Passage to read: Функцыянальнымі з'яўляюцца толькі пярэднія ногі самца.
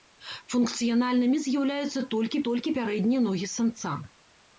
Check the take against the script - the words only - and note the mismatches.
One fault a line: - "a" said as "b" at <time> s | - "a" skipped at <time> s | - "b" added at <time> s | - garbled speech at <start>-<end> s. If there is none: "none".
- "толькі" added at 2.5 s